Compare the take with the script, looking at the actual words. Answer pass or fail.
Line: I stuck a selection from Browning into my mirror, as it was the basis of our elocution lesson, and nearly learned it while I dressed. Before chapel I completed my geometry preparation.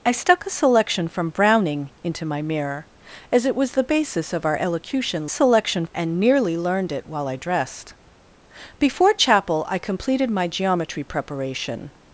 fail